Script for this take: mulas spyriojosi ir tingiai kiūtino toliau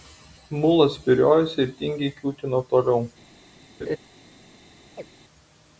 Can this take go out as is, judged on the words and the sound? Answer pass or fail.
fail